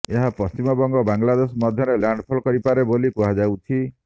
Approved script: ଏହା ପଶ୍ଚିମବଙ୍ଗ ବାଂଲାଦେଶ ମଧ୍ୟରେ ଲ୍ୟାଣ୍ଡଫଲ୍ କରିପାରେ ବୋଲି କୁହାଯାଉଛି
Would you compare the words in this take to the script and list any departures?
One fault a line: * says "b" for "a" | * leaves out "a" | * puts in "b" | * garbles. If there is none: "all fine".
all fine